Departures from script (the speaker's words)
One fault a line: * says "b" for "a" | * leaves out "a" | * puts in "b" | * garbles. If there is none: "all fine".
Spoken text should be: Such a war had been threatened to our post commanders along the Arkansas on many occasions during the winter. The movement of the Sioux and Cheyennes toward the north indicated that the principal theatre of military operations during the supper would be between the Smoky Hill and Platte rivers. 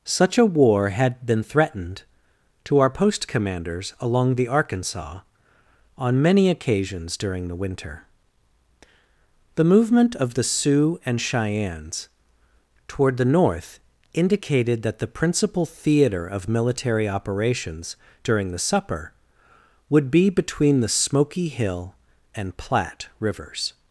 all fine